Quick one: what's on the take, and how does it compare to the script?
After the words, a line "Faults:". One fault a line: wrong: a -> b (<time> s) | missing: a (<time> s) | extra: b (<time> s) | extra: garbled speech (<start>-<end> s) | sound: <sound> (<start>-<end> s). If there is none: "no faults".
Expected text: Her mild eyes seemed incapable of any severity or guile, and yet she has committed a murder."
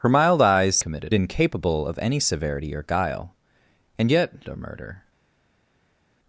Her mild eyes committed incapable of any severity or guile, and yet a murder."
Faults:
wrong: seemed -> committed (0.8 s)
missing: she has committed (4.4 s)